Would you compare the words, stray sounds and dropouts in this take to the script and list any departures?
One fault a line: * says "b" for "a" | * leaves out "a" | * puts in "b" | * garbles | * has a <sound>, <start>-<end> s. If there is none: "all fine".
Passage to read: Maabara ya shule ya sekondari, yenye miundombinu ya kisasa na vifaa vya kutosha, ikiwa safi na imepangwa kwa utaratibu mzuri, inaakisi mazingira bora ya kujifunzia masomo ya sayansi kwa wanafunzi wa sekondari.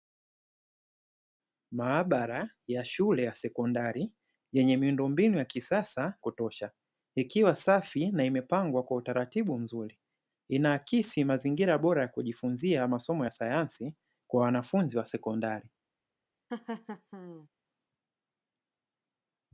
* leaves out "na vifaa vya"
* has a laugh, 16.5-17.5 s